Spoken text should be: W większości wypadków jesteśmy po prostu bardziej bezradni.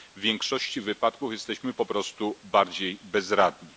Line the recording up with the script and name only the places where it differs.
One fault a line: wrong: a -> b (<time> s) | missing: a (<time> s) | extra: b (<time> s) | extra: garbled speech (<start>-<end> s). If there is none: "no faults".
no faults